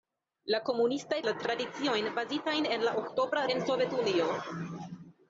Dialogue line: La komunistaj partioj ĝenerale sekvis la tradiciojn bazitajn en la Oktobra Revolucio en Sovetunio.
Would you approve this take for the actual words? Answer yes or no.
no